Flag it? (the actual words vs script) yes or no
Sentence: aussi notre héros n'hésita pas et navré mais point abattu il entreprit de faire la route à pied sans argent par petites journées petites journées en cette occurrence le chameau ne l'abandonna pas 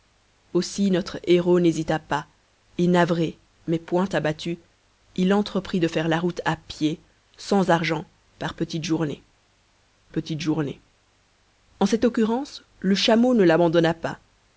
no